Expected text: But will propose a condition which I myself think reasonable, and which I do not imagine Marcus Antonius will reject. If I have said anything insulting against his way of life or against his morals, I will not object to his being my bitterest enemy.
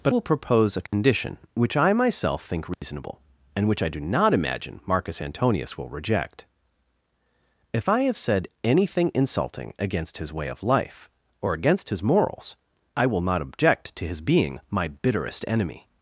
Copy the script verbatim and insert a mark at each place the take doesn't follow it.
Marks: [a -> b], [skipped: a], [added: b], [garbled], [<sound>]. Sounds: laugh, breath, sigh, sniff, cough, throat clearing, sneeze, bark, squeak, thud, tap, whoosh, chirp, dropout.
But will propose a condition [dropout] which I myself think reasonable, [dropout] and which I do not imagine Marcus Antonius will reject. If I have said anything insulting against his way of life or against his morals, I will not object to his being my bitterest enemy.